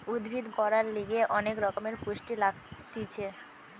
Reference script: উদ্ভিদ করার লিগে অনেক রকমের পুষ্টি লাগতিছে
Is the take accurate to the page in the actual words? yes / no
yes